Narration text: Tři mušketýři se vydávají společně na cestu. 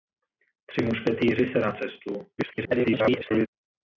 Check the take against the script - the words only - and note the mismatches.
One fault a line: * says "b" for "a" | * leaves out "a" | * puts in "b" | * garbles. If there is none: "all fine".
* leaves out "vydávají společně"
* garbles